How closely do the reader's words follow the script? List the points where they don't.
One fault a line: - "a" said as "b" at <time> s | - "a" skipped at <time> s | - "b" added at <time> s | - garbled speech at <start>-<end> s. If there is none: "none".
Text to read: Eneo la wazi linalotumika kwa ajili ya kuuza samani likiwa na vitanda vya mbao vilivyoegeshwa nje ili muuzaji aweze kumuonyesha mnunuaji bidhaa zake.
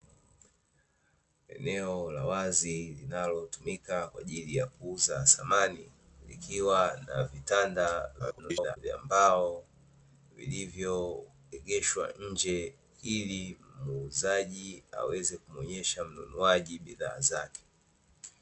- garbled speech at 8.2-8.8 s